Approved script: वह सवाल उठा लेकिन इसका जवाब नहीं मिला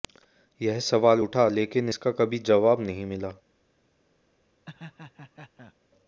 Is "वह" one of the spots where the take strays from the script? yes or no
yes